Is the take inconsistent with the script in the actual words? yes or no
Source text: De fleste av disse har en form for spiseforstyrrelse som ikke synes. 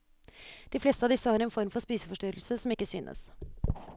no